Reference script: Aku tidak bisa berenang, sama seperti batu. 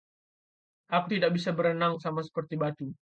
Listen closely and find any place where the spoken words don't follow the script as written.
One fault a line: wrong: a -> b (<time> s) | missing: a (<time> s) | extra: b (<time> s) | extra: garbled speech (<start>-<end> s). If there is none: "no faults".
no faults